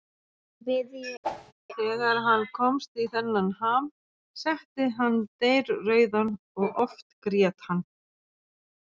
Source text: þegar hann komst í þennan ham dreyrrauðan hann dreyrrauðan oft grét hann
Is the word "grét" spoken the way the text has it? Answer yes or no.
yes